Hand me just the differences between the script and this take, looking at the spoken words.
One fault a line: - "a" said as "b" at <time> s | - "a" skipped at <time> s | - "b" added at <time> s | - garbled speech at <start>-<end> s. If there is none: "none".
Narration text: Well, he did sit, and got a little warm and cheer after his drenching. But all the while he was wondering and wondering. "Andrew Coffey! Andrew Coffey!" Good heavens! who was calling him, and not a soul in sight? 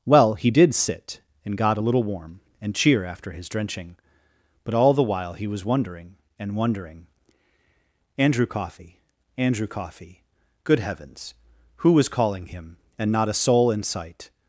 none